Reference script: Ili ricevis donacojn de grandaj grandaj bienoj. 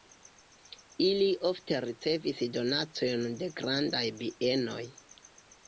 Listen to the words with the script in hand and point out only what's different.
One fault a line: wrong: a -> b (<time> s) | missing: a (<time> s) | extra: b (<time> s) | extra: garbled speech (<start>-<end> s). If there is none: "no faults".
extra: ofte (1.5 s)
missing: grandaj (4.0 s)